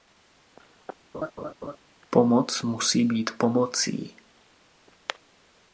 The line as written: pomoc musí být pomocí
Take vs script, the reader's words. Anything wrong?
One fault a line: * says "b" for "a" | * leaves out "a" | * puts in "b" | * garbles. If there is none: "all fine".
all fine